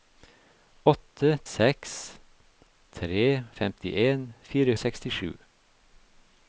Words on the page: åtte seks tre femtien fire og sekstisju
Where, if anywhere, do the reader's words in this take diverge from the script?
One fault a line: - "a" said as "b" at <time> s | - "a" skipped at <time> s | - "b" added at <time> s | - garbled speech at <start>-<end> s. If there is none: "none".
none